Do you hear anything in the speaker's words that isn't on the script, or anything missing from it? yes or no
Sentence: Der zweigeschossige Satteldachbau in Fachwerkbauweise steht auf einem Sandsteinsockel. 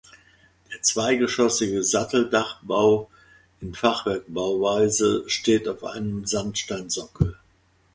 no